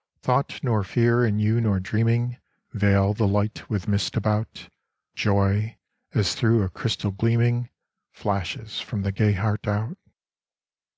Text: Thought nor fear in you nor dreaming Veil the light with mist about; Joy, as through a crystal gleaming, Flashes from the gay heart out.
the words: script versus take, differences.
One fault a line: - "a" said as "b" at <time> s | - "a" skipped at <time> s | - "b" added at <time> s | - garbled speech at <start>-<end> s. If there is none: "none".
none